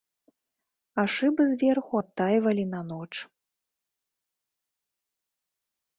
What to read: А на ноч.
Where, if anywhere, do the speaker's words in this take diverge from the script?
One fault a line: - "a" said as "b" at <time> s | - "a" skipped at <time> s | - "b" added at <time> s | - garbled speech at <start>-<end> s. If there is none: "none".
- "шыбы зверху адтайвалі" added at 1.1 s